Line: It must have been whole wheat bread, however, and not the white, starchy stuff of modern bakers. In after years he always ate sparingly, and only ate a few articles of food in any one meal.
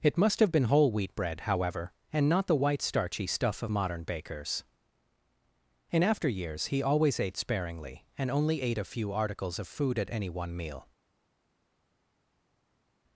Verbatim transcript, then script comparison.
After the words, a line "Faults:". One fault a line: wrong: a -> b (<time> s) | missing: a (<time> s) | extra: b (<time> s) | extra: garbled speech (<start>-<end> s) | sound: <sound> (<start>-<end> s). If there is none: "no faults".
It must have been whole wheat bread, however, and not the white, starchy stuff of modern bakers. In after years he always ate sparingly, and only ate a few articles of food at any one meal.
Faults:
wrong: in -> at (10.0 s)